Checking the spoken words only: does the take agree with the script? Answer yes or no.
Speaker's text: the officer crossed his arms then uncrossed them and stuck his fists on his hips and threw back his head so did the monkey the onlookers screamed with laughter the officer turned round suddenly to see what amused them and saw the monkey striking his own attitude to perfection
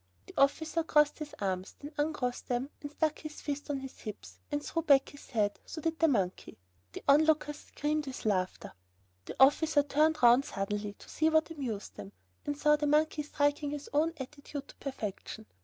yes